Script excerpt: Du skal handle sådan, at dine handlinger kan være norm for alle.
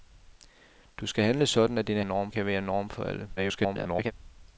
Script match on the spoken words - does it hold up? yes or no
no